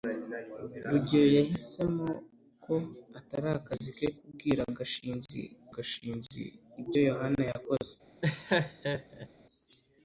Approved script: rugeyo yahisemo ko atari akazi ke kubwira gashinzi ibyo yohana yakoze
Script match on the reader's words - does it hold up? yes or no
no